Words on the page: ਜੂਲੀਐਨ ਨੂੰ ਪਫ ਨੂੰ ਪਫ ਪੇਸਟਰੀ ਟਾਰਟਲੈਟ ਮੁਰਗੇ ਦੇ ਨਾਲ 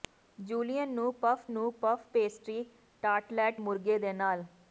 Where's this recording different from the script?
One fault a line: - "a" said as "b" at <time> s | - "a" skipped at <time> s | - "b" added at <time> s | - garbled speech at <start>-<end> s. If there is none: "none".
none